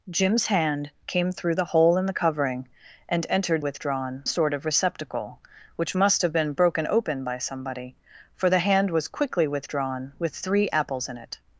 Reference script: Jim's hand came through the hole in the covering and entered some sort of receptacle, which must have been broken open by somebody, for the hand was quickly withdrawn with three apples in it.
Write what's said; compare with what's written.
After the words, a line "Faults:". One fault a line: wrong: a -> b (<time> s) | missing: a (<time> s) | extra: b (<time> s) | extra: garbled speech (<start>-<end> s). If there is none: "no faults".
Jim's hand came through the hole in the covering and entered withdrawn sort of receptacle, which must have been broken open by somebody, for the hand was quickly withdrawn with three apples in it.
Faults:
wrong: some -> withdrawn (3.6 s)